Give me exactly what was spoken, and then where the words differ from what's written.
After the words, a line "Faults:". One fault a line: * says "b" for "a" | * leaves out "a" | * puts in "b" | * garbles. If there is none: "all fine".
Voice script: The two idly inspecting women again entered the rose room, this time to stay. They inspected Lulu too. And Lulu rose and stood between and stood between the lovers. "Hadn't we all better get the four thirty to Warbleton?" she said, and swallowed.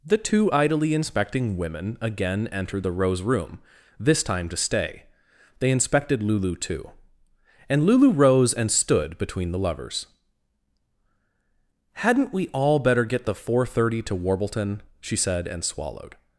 The two idly inspecting women again entered the rose room, this time to stay. They inspected Lulu too. And Lulu rose and stood between the lovers. "Hadn't we all better get the four thirty to Warbleton?" she said, and swallowed.
Faults:
* leaves out "and stood between"